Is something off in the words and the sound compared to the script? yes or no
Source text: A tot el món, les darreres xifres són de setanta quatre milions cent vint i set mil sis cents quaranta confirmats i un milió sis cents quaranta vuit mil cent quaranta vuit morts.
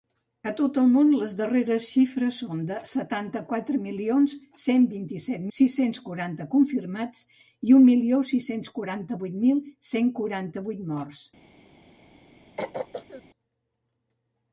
yes